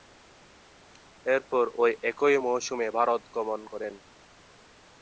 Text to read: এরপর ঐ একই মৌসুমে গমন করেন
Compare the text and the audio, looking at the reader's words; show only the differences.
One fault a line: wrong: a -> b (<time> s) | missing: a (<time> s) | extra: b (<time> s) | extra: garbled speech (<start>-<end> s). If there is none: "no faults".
extra: ভারত (3.0 s)